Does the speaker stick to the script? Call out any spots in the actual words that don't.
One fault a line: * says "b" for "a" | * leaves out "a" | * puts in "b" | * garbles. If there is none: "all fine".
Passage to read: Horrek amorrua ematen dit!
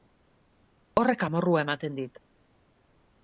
all fine